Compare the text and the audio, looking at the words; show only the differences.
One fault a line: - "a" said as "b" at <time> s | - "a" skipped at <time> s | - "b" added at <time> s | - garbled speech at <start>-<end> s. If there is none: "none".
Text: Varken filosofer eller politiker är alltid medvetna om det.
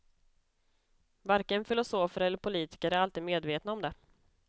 none